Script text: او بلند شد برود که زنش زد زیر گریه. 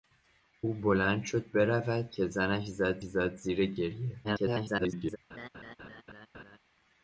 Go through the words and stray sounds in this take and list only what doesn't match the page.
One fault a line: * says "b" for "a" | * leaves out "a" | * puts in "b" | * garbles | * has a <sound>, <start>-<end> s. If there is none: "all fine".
* puts in "زد"
* garbles
* has a laugh, 5.3-6.6 s